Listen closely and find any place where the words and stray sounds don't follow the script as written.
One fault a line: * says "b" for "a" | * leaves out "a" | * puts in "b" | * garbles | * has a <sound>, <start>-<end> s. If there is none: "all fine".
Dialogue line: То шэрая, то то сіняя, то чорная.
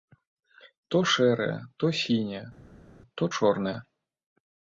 * leaves out "то"